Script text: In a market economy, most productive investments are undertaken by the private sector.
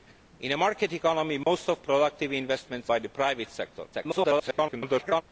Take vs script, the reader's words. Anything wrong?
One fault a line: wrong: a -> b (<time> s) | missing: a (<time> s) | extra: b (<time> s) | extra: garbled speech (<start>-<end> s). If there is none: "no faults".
missing: are undertaken (2.9 s)
extra: garbled speech (3.9-5.2 s)